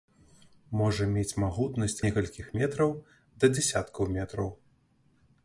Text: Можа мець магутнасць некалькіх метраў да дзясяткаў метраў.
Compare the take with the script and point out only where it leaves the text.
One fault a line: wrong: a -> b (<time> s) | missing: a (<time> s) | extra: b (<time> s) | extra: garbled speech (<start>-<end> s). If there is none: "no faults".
no faults